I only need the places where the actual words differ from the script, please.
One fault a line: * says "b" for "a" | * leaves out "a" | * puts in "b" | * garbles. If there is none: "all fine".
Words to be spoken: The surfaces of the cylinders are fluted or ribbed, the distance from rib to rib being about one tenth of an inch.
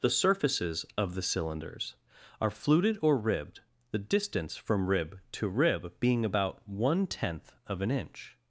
all fine